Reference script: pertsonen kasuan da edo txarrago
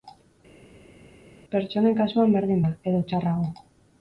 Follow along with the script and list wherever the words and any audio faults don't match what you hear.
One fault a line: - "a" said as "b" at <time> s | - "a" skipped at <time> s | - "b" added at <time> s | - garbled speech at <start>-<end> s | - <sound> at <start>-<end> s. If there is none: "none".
- "berdin" added at 2.4 s